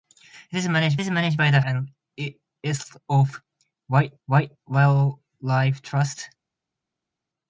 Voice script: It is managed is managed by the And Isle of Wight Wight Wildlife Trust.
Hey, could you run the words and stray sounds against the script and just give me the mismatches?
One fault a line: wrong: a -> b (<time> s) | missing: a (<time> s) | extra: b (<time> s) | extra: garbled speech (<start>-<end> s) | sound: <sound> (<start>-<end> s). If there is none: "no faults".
no faults